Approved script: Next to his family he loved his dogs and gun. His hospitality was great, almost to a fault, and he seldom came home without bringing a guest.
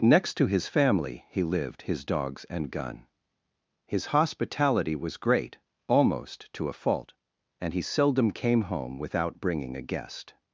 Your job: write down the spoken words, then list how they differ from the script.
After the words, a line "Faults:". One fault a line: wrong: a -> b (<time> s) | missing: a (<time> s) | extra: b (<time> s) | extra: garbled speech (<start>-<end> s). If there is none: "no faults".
Next to his family he lived his dogs and gun. His hospitality was great, almost to a fault, and he seldom came home without bringing a guest.
Faults:
wrong: loved -> lived (1.4 s)